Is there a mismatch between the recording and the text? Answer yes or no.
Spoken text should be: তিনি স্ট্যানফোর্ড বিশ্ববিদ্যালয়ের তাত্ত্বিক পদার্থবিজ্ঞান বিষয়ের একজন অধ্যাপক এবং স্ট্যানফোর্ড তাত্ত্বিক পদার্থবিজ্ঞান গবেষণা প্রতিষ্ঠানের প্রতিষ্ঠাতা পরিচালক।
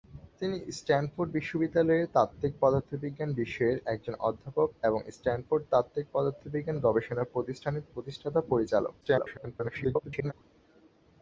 yes